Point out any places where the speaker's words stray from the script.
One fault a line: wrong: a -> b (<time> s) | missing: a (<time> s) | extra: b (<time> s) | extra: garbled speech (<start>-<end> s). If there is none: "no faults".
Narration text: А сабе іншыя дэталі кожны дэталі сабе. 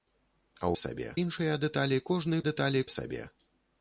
no faults